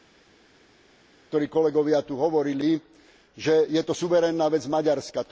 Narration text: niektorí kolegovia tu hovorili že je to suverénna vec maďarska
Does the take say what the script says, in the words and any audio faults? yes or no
yes